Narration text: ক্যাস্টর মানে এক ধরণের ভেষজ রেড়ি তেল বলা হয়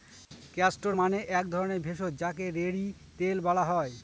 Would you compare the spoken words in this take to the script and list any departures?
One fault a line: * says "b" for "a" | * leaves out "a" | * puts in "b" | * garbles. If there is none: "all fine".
* puts in "যাকে"